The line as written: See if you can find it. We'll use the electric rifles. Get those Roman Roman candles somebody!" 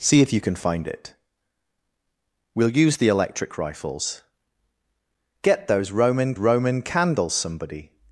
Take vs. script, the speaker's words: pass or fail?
pass